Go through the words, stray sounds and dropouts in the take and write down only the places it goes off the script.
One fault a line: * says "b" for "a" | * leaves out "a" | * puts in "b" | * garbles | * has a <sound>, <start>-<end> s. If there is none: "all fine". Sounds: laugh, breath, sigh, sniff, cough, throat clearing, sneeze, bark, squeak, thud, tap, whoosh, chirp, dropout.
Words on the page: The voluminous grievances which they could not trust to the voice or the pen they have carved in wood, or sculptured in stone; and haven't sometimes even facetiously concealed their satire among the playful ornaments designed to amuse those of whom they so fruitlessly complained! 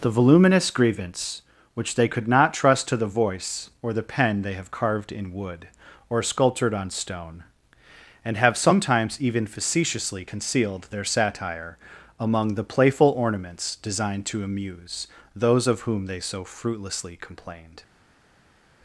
* says "grievance" for "grievances"
* says "on" for "in"
* says "have" for "haven't"